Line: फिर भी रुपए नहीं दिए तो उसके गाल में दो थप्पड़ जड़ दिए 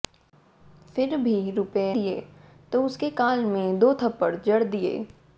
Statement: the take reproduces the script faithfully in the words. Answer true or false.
false